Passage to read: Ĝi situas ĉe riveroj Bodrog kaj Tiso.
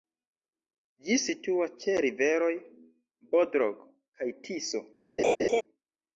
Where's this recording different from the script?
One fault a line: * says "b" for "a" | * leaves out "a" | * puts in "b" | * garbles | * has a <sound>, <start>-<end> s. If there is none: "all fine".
* has a laugh, 5.2-5.6 s